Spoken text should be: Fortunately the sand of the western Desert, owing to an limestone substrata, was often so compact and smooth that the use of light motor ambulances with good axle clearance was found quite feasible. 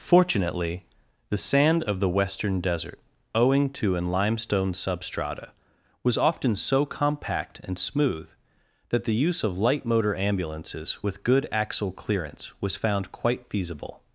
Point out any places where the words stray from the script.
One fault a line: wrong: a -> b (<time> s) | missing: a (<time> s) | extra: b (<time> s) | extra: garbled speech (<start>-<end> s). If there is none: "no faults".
no faults